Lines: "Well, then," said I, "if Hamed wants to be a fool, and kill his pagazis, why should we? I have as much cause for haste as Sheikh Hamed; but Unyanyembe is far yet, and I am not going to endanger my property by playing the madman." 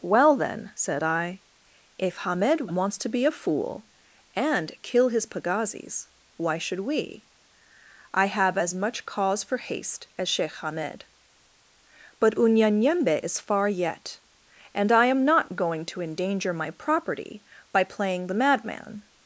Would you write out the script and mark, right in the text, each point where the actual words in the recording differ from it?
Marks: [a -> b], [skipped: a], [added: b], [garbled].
"Well, then," said I, "if Hamed wants to be a fool, and kill his pagazis, why should we? I have as much cause for haste as Sheikh Hamed; but Unyanyembe is far yet, and I am not going to endanger my property by playing the madman."